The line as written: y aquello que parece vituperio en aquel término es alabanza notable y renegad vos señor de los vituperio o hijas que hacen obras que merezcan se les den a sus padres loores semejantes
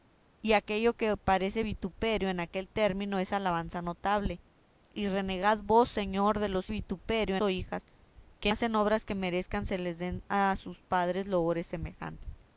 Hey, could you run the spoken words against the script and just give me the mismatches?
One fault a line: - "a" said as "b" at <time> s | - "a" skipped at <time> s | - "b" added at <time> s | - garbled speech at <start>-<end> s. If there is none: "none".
none